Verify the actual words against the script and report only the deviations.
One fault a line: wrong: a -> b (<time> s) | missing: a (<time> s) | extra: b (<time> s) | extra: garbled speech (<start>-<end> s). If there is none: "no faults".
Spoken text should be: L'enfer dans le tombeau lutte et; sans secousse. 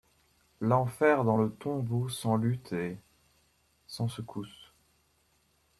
extra: sans (2.1 s)